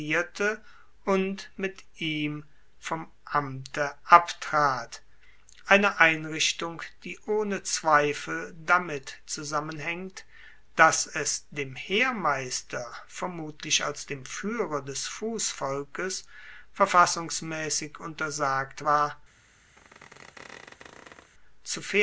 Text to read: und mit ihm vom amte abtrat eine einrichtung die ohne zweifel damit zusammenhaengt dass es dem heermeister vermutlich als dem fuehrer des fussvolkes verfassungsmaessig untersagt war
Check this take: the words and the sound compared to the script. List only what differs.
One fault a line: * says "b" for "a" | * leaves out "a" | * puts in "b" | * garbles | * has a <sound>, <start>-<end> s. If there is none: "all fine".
* has a squeak, 19.8-21.3 s